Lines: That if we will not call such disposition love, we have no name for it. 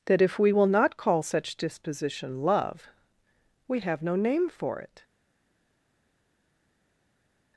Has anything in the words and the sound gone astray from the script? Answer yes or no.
no